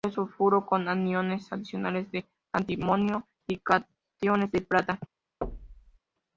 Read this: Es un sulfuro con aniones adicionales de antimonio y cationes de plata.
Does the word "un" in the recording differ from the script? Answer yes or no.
yes